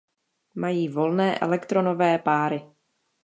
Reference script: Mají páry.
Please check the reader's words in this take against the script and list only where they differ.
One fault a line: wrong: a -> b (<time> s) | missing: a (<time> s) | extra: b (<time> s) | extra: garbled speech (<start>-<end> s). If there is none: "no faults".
extra: volné elektronové (0.9 s)